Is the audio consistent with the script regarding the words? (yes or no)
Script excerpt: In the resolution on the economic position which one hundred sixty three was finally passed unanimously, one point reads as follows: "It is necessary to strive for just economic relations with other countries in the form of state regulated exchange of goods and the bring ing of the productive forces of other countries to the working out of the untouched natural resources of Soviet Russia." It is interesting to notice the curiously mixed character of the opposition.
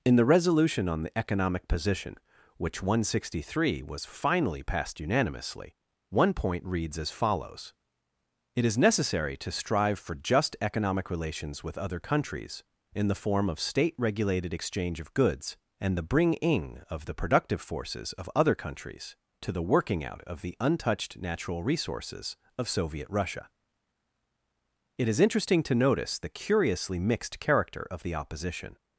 yes